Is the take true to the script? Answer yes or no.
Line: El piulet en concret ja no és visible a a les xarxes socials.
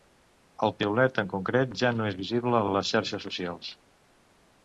yes